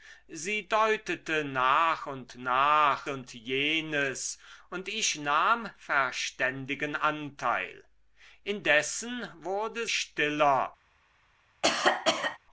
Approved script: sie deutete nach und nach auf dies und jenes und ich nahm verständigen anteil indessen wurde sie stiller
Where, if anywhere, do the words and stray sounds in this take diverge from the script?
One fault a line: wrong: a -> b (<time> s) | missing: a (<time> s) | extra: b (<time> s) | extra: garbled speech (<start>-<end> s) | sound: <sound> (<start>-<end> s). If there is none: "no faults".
missing: auf dies (3.1 s)
missing: sie (9.9 s)
sound: cough (11.6-12.4 s)